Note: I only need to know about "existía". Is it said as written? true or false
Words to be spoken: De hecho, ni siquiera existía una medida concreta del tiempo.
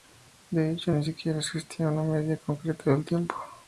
true